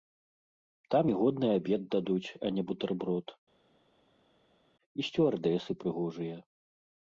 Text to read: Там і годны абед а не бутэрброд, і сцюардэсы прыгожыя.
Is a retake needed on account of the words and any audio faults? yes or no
yes